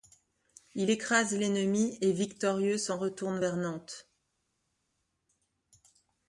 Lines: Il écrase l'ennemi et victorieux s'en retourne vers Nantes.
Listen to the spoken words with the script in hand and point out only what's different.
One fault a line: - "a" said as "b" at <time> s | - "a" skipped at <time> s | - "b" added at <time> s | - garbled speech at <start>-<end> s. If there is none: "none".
none